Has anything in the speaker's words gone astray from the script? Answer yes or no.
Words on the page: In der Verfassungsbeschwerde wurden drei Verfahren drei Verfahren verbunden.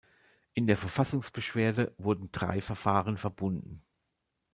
yes